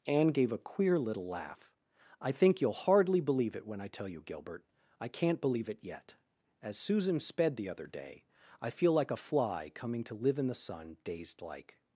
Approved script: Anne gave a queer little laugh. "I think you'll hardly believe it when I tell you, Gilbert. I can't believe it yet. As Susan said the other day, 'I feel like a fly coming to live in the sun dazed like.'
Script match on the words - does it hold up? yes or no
no